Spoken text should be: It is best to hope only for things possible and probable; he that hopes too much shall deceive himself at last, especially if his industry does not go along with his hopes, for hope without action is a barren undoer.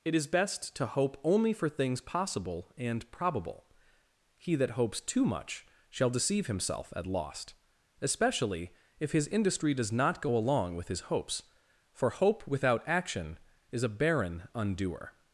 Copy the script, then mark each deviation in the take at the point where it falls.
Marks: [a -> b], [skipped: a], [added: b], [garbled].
It is best to hope only for things possible and probable; he that hopes too much shall deceive himself at [last, -> lost] especially if his industry does not go along with his hopes, for hope without action is a barren undoer.